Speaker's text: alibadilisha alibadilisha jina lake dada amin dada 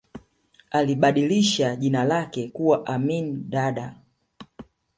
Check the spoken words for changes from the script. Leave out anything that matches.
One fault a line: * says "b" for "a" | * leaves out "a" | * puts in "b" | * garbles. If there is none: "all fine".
* leaves out "alibadilisha"
* says "kuwa" for "dada"